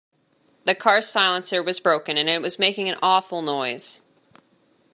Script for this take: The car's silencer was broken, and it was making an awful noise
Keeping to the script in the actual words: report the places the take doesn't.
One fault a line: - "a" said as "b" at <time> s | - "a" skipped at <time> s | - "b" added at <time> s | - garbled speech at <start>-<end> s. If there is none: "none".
none